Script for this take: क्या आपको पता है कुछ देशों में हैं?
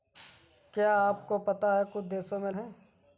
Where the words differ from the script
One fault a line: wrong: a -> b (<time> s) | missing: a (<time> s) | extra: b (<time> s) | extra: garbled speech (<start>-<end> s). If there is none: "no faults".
no faults